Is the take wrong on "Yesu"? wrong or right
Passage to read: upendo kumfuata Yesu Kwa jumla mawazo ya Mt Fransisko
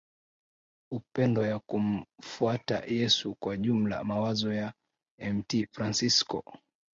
right